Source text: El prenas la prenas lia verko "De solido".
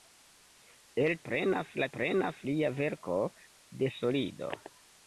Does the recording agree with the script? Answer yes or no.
yes